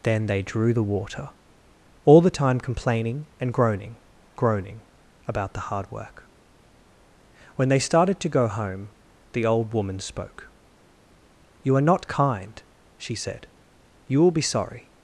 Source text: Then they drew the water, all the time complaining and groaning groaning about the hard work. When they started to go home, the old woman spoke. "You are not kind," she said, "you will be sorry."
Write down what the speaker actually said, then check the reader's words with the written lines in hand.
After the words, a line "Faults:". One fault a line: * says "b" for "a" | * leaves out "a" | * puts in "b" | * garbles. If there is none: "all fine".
Then they drew the water, all the time complaining and groaning groaning about the hard work. When they started to go home, the old woman spoke. "You are not kind," she said, "you will be sorry."
Faults:
all fine